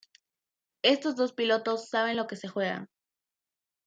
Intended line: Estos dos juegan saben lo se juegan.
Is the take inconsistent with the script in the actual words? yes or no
yes